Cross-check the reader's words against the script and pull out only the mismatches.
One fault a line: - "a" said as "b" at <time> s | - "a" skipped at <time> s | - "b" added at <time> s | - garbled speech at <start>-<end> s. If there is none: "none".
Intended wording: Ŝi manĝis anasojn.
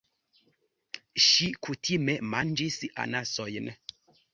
- "kutime" added at 1.7 s